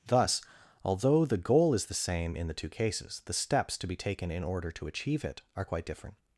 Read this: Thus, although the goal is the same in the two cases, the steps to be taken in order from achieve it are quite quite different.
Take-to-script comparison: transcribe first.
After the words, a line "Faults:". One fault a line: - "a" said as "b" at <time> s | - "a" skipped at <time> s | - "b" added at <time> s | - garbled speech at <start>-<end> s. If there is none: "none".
Thus, although the goal is the same in the two cases, the steps to be taken in order to achieve it are quite different.
Faults:
- "from" said as "to" at 4.7 s
- "quite" skipped at 5.8 s